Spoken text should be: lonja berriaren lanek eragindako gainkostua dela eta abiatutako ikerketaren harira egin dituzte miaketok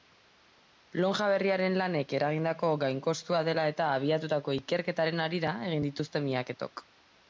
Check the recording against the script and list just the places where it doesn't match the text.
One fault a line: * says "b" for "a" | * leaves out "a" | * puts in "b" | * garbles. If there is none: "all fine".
all fine